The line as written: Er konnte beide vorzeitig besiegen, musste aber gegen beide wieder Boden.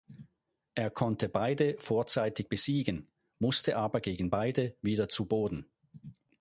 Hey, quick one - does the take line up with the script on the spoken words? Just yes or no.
no